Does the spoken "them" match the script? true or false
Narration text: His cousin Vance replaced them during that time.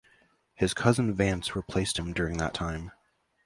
false